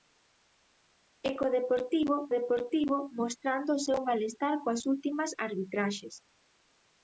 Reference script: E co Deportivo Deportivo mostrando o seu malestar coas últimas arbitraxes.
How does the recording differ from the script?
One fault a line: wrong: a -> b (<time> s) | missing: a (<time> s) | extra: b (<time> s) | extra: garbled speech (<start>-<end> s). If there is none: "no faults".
no faults